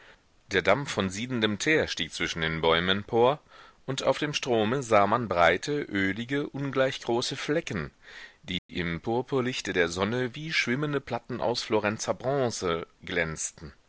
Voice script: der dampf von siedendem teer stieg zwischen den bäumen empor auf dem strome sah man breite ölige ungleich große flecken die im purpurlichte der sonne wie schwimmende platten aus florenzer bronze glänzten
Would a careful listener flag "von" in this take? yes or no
no